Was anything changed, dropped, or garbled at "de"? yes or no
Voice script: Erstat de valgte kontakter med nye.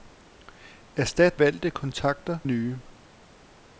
yes